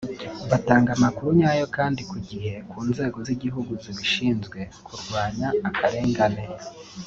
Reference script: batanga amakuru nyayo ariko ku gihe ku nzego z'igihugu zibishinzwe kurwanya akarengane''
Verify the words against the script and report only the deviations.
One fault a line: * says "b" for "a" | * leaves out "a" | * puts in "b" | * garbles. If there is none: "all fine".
* says "kandi" for "ariko"